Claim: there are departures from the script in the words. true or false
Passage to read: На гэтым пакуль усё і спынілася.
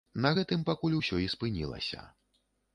false